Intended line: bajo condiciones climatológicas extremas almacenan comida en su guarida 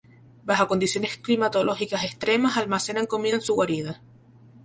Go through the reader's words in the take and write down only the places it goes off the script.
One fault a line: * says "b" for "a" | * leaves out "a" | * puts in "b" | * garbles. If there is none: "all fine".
all fine